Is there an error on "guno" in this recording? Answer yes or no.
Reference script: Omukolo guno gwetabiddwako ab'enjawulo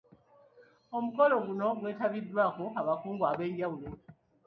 no